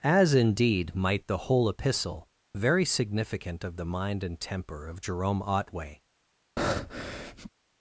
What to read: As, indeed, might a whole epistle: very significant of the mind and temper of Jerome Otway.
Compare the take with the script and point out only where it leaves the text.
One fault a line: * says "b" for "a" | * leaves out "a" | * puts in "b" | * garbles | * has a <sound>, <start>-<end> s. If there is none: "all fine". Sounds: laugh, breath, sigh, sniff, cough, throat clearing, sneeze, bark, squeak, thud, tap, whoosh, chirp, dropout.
* says "the" for "a"
* has a breath, 6.6-7.5 s